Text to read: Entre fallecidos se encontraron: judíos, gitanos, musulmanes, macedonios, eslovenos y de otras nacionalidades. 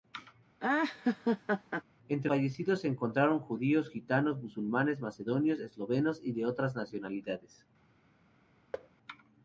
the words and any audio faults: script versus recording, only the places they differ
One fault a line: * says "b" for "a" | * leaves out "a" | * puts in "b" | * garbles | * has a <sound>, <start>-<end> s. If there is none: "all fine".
* has a laugh, 0.6-1.8 s
* has a thud, 8.7-8.9 s